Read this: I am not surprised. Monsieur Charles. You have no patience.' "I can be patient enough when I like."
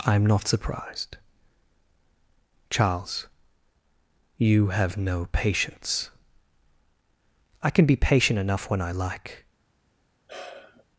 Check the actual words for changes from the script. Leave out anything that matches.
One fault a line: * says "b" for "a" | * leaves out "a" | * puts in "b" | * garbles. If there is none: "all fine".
* leaves out "Monsieur"